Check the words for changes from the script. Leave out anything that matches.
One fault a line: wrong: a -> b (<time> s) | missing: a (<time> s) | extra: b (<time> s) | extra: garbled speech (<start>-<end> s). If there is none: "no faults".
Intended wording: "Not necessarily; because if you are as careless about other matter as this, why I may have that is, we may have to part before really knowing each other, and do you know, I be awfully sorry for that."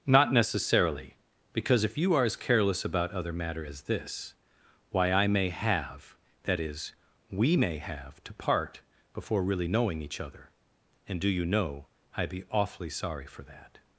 no faults